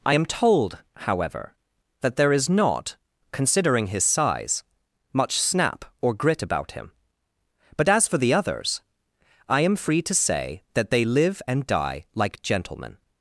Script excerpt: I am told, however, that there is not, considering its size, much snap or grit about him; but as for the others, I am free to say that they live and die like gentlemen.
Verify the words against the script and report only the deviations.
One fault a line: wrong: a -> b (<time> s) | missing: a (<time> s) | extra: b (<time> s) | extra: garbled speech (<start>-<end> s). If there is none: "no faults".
wrong: its -> his (3.9 s)